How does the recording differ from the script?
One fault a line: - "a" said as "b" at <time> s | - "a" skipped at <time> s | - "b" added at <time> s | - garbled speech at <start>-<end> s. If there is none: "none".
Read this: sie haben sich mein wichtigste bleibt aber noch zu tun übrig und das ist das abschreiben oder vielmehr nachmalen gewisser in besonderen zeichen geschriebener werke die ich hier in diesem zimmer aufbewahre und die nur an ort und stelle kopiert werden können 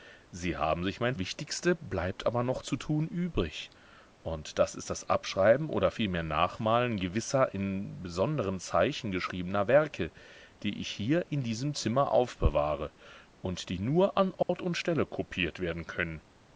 none